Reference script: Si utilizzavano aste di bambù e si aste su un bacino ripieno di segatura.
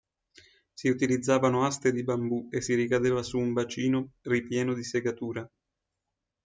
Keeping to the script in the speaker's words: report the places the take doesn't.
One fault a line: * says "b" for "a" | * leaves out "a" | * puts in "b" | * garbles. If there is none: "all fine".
* says "ricadeva" for "aste"